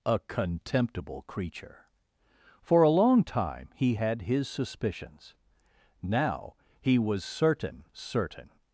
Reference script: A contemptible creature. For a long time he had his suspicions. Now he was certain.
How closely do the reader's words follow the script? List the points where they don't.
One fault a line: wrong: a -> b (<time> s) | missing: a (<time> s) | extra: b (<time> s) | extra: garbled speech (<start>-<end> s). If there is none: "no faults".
extra: certain (7.9 s)